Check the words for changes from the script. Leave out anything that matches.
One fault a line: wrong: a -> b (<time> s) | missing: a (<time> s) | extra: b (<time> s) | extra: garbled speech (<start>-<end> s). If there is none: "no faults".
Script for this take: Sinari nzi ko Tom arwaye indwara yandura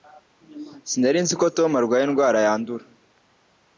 no faults